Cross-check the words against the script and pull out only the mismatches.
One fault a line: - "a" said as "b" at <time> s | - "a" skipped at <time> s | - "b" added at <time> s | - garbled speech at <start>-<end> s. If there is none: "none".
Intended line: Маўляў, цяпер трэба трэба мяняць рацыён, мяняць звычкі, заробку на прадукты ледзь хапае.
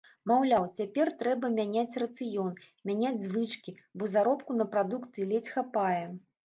- "трэба" skipped at 1.5 s
- "бо" added at 4.0 s